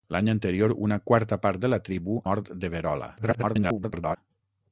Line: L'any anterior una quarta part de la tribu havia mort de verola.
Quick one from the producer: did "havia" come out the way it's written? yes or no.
no